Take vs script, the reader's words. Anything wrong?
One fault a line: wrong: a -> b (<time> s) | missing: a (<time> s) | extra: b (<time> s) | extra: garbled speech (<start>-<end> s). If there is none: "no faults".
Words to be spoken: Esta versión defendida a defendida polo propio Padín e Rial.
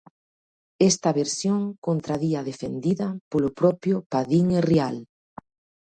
wrong: defendida -> contradí (1.9 s)